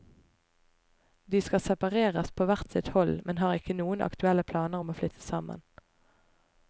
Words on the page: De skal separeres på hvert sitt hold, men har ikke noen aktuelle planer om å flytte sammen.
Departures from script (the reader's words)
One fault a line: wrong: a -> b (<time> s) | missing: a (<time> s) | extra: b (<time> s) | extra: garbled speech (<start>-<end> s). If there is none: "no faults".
no faults